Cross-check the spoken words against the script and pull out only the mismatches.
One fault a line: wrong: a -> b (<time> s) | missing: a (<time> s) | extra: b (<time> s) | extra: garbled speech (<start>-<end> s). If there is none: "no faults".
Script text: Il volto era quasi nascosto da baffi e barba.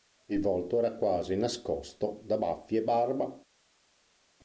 no faults